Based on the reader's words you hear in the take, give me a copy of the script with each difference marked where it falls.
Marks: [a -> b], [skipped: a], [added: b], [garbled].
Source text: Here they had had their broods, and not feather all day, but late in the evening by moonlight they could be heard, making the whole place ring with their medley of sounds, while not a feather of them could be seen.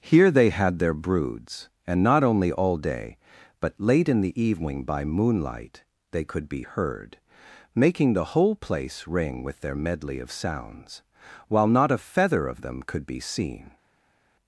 Here they had [skipped: had] their broods, and not [feather -> only] all day, but late in the evening by moonlight they could be heard, making the whole place ring with their medley of sounds, while not a feather of them could be seen.